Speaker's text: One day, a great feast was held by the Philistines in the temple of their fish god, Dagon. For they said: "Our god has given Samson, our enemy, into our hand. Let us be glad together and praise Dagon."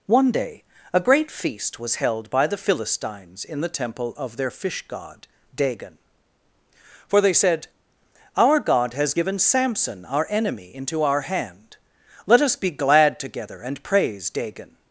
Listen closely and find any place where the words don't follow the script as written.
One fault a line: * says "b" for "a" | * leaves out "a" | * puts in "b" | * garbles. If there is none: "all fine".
all fine